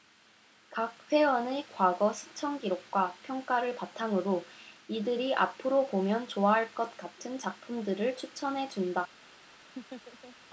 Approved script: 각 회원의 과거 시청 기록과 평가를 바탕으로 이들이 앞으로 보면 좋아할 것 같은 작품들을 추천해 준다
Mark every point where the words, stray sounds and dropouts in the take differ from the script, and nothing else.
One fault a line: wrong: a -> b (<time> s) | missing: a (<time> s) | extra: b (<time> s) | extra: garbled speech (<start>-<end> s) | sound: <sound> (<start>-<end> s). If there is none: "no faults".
sound: laugh (9.8-10.4 s)